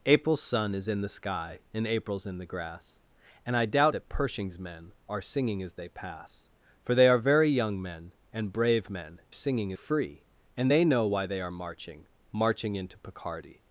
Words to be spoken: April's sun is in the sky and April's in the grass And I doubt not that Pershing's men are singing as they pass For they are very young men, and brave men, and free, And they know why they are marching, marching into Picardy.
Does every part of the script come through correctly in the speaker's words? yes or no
no